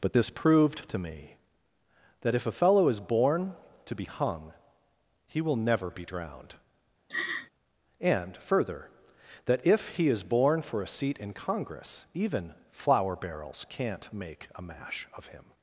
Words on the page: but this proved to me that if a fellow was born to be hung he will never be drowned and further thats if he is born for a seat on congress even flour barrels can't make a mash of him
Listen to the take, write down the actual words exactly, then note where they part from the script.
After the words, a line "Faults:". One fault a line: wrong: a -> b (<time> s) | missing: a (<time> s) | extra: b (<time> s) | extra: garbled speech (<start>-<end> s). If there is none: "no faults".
but this proved to me that if a fellow is born to be hung he will never be drowned and further that if he is born for a seat in congress even flour barrels can't make a mash of him
Faults:
wrong: was -> is (2.9 s)
wrong: thats -> that (9.4 s)
wrong: on -> in (11.2 s)